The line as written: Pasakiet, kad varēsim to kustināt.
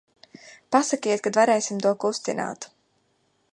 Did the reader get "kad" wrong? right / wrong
right